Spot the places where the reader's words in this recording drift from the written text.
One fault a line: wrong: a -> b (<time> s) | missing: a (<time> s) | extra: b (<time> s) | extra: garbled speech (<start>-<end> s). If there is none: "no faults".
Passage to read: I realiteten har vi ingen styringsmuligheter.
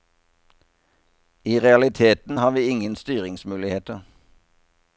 no faults